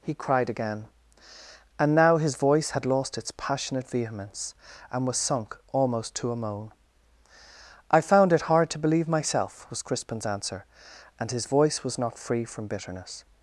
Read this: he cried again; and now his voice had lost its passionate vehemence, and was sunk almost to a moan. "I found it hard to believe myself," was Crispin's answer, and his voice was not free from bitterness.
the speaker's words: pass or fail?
pass